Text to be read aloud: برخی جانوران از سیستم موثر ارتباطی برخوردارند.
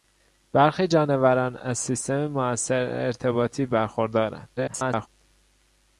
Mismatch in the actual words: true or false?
true